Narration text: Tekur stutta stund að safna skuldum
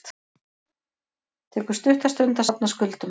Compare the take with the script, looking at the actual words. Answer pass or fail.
pass